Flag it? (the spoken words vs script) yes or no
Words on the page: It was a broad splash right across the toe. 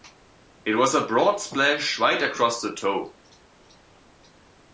no